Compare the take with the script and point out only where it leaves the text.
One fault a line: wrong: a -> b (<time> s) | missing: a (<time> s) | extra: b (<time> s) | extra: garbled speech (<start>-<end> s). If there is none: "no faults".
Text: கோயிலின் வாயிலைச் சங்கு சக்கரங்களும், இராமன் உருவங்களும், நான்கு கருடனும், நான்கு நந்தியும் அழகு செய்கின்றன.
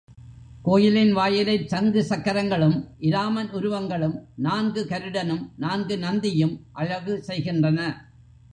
no faults